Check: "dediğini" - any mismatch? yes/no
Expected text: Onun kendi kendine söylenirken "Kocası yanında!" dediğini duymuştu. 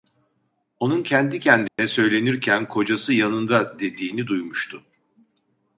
no